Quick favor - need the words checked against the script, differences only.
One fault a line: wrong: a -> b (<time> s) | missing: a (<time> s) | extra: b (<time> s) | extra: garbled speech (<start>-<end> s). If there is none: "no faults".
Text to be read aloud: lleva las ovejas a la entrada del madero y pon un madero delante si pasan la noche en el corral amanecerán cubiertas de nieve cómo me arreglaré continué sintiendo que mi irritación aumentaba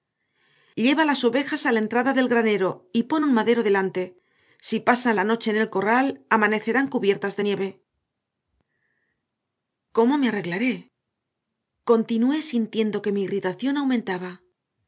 wrong: madero -> granero (2.3 s)